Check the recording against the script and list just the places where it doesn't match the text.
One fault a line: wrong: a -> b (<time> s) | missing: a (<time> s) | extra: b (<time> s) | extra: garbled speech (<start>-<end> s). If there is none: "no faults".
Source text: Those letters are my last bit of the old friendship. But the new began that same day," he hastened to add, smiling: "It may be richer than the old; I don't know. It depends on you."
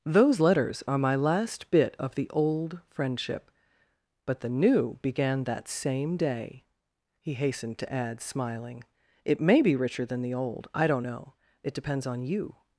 no faults